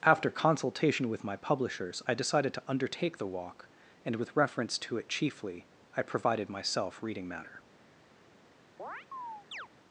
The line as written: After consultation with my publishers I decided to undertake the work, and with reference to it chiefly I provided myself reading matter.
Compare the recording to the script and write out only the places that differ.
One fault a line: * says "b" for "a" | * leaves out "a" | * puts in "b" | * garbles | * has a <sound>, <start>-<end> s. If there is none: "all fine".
* says "walk" for "work"
* has a chirp, 8.8-9.7 s